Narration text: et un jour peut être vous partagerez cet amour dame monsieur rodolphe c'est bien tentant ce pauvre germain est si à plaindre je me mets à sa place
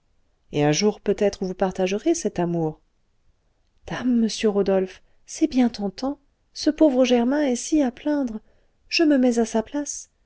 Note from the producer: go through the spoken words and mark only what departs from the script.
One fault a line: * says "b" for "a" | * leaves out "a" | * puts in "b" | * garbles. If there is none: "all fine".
all fine